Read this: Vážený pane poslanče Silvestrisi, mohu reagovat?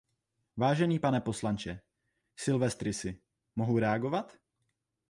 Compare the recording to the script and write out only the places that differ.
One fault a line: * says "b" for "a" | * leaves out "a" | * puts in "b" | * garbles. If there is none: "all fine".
all fine